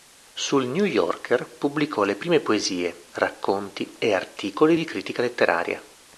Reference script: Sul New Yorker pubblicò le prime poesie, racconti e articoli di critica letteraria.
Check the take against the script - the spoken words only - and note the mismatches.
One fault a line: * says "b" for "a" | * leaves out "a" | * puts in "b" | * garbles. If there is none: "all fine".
all fine